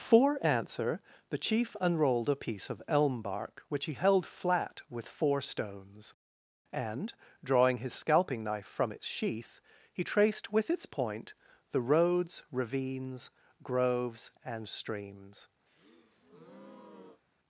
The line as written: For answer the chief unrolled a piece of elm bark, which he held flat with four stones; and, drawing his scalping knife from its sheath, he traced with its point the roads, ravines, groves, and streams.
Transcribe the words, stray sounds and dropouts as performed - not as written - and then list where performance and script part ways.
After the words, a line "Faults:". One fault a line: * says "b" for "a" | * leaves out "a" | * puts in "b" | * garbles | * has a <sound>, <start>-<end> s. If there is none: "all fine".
For answer the chief unrolled a piece of elm bark, which he held flat with four stones; and, drawing his scalping knife from its sheath, he traced with its point the roads, ravines, groves, and streams.
Faults:
* has a breath, 15.7-17.2 s